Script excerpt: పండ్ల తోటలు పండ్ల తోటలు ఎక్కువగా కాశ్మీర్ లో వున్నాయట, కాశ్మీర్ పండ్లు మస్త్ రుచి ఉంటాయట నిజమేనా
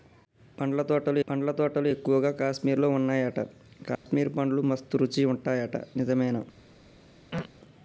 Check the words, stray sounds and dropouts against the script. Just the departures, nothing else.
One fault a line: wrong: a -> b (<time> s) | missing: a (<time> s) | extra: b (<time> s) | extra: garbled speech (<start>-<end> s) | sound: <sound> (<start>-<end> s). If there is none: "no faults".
sound: dropout (4.0-4.1 s)
sound: throat clearing (7.3-7.5 s)